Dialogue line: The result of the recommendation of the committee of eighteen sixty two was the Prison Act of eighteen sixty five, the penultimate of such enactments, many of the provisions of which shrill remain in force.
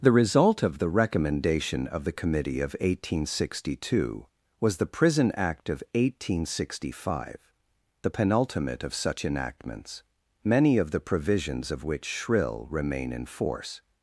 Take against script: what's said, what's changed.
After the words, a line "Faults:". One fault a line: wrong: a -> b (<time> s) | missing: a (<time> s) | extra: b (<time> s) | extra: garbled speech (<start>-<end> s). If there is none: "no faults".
The result of the recommendation of the committee of eighteen sixty two was the Prison Act of eighteen sixty five, the penultimate of such enactments, many of the provisions of which shrill remain in force.
Faults:
no faults